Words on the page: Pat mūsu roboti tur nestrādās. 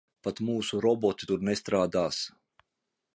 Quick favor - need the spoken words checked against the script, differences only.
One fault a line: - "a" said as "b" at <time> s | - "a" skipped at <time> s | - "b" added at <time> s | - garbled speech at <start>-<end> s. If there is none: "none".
none